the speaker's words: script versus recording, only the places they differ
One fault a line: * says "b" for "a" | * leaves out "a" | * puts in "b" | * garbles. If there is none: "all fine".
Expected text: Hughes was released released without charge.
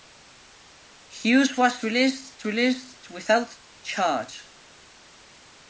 all fine